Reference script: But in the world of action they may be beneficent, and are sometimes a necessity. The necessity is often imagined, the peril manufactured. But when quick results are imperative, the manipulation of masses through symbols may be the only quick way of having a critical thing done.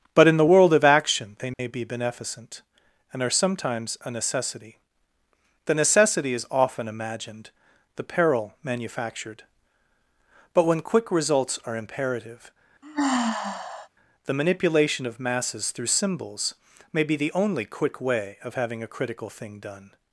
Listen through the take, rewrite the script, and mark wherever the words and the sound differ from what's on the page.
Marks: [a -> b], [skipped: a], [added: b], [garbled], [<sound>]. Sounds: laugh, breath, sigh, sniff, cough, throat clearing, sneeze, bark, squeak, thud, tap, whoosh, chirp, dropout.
But in the world of action they may [dropout] be beneficent, and are sometimes a necessity. The necessity is often imagined, the peril manufactured. But when quick results are imperative, [sigh] the manipulation of masses through symbols may be the only quick way of having a critical thing done.